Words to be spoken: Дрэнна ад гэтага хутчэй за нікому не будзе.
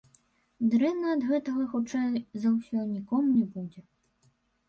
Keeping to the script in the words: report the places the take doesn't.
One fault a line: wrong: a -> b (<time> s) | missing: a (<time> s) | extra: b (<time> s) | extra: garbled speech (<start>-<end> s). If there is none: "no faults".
extra: ўсё (2.5 s)